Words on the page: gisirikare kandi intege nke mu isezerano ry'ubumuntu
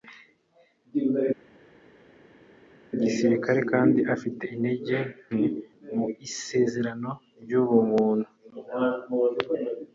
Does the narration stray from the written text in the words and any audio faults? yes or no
yes